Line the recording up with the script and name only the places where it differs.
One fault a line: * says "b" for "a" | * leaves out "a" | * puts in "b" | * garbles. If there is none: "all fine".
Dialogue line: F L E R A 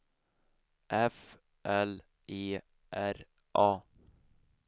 all fine